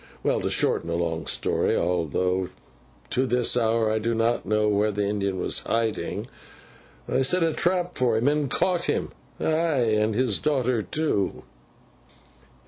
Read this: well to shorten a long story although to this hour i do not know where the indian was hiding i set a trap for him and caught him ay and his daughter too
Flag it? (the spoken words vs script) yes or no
no